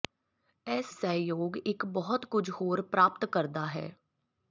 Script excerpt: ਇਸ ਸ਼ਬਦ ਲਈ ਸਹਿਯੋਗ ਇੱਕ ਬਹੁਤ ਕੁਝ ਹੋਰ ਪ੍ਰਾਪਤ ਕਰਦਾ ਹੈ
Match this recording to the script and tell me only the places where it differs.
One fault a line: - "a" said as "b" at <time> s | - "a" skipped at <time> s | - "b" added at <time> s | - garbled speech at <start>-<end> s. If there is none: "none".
- "ਸ਼ਬਦ ਲਈ" skipped at 0.9 s